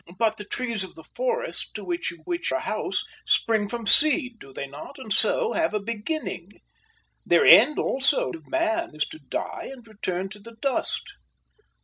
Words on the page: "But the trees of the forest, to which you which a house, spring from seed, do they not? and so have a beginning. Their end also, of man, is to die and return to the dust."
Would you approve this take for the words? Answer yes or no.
yes